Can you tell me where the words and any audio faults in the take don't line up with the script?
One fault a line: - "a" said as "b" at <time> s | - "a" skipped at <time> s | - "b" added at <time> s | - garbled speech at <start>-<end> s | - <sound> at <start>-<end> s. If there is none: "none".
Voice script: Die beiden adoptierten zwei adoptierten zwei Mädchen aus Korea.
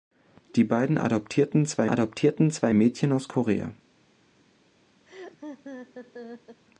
- laugh at 5.1-6.6 s